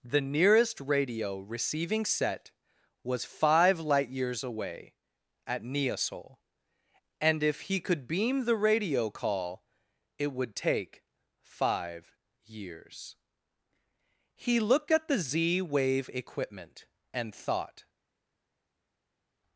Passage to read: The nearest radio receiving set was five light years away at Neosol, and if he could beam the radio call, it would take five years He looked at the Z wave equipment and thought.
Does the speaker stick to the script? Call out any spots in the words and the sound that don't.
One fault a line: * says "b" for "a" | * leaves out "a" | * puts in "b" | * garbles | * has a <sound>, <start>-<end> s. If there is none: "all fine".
all fine